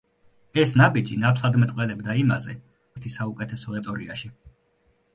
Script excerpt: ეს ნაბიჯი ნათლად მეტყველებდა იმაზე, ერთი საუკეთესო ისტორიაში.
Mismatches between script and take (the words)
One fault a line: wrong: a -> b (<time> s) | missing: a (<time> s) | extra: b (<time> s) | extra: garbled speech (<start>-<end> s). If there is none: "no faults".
no faults